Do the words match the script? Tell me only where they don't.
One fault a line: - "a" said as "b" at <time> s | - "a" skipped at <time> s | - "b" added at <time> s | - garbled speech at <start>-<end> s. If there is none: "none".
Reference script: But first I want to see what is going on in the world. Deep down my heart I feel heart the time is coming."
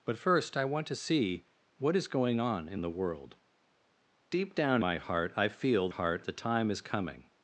none